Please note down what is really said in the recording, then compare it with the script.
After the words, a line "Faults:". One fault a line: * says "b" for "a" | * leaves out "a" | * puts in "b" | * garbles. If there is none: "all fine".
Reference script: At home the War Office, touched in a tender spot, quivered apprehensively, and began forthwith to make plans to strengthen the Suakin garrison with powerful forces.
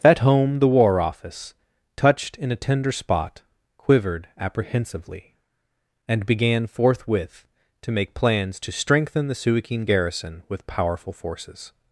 At home the War Office, touched in a tender spot, quivered apprehensively, and began forthwith to make plans to strengthen the Suakin garrison with powerful forces.
Faults:
all fine